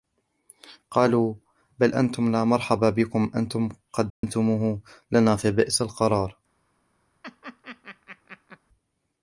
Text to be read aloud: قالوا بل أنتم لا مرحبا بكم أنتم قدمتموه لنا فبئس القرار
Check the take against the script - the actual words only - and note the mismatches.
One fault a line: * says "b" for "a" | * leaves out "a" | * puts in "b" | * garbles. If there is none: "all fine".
all fine